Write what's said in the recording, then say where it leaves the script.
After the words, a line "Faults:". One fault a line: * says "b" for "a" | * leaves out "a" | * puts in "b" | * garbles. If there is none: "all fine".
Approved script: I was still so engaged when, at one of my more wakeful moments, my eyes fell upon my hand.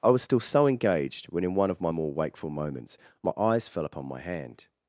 I was still so engaged when, in one of my more wakeful moments, my eyes fell upon my hand.
Faults:
* says "in" for "at"